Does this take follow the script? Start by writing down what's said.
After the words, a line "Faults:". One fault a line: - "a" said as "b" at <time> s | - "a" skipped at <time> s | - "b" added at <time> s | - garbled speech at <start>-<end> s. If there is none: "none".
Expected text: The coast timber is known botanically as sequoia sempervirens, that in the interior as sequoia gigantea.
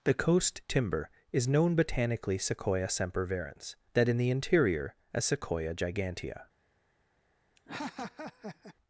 The coast timber is known botanically sequoia sempervirens, that in the interior as sequoia gigantea.
Faults:
- "as" skipped at 2.4 s